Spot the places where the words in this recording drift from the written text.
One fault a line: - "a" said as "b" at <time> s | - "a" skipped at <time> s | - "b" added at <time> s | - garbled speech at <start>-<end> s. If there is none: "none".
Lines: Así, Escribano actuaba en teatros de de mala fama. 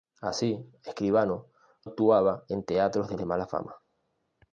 none